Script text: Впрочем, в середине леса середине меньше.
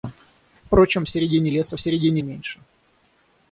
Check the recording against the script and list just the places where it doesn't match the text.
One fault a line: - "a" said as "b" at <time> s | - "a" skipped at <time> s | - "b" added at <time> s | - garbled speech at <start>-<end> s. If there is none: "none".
none